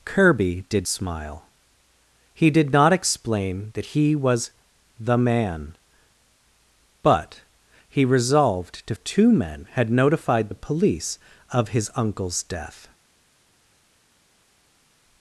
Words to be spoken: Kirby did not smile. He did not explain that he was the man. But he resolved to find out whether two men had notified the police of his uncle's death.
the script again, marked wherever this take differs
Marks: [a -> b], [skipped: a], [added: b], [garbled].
Kirby did [skipped: not] smile. He did not explain that he was the man. But he resolved to [skipped: find out whether] two men had notified the police of his uncle's death.